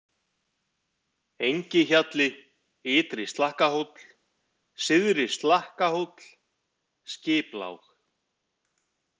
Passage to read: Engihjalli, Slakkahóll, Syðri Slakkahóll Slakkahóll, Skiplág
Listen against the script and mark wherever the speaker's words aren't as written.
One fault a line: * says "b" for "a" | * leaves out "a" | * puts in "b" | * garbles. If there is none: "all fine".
* puts in "Ytri"
* leaves out "Slakkahóll"